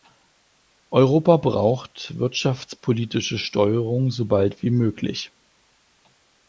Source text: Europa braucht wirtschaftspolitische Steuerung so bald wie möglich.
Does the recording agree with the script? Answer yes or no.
yes